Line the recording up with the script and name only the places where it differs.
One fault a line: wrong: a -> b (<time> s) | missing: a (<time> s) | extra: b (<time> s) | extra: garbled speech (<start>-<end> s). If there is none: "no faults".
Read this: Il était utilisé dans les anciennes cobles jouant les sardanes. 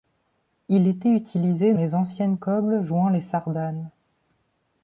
missing: dans (1.8 s)